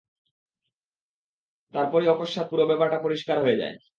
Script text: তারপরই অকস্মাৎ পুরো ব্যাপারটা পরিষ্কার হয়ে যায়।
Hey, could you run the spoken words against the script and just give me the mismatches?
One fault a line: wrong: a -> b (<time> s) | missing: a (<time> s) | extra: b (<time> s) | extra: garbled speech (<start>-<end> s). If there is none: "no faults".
no faults